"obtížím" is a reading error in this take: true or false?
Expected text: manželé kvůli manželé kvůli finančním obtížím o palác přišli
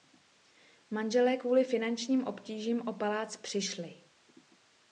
false